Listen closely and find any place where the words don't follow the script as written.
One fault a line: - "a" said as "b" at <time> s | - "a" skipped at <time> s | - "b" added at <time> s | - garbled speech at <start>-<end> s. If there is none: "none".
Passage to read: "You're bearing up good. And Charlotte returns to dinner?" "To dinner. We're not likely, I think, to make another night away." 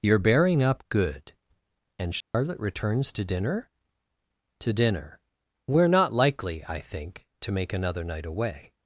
none